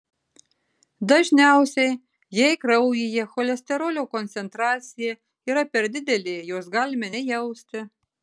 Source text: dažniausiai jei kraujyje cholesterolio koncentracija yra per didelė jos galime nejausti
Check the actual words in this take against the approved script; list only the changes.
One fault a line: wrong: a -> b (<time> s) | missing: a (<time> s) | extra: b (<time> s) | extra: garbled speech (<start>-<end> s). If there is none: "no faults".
no faults